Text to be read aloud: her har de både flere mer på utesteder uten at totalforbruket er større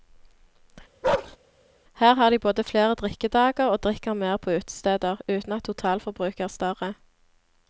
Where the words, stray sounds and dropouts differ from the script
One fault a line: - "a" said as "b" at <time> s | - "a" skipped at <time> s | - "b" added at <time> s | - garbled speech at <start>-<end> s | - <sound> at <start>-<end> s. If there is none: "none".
- bark at 1.0-1.4 s
- "drikkedager og drikker" added at 2.9 s